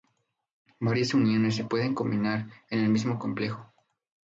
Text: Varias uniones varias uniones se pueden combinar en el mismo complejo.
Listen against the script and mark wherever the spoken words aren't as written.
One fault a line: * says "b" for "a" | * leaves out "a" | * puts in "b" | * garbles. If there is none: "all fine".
* leaves out "varias uniones"